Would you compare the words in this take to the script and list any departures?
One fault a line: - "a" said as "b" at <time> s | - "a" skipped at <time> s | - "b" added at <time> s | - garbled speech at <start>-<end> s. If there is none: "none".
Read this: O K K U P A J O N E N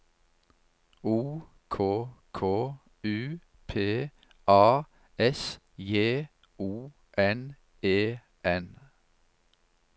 - "S" added at 5.2 s